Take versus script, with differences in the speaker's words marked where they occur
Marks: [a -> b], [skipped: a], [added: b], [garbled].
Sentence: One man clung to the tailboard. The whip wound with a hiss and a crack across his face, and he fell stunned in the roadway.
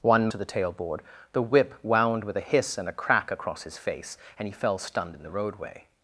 One [skipped: man clung] to the tailboard. The whip wound with a hiss and a crack across his face, and he fell stunned in the roadway.